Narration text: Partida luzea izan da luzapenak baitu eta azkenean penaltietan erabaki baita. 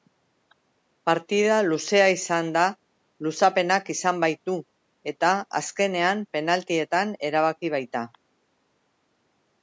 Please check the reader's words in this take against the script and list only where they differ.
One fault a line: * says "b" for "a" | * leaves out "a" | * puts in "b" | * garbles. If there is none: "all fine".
* puts in "izan"